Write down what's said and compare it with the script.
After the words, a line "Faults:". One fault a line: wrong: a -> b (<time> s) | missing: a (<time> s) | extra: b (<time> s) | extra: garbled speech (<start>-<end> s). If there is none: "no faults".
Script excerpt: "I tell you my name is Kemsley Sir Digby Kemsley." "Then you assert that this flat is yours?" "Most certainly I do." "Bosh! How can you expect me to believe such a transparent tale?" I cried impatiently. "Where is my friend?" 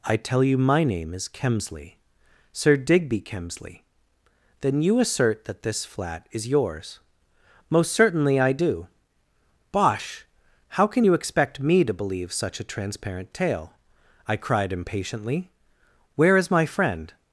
"I tell you my name is Kemsley Sir Digby Kemsley." "Then you assert that this flat is yours?" "Most certainly I do." "Bosh! How can you expect me to believe such a transparent tale?" I cried impatiently. "Where is my friend?"
Faults:
no faults